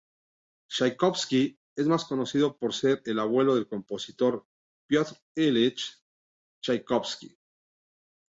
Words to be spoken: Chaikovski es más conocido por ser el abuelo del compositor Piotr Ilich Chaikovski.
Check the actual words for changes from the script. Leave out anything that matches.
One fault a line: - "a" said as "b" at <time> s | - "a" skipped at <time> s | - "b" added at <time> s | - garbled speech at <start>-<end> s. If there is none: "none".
none